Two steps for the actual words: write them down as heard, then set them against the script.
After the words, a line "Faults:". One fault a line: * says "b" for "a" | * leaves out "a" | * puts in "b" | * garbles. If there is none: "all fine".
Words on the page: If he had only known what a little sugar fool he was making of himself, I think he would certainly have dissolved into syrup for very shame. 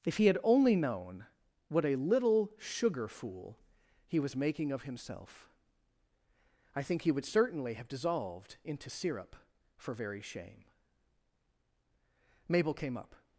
If he had only known what a little sugar fool he was making of himself, I think he would certainly have dissolved into syrup for very shame. Mabel came up
Faults:
* puts in "Mabel came up"